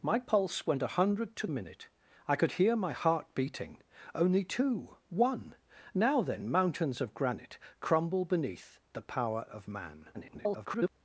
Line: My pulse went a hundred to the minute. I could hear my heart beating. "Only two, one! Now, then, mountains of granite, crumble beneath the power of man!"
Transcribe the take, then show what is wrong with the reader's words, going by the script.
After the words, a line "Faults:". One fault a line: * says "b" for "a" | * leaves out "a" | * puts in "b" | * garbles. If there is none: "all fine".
My pulse went a hundred to minute. I could hear my heart beating. "Only two, one! Now, then, mountains of granite, crumble beneath the power of man!" [garbled]
Faults:
* leaves out "the"
* garbles